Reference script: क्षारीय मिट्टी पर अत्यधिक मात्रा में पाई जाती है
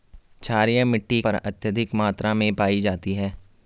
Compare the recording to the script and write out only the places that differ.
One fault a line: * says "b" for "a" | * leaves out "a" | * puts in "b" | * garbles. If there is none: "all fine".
all fine